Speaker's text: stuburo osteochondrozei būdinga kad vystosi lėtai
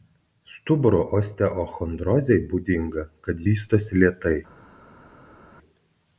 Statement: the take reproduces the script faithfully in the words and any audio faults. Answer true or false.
true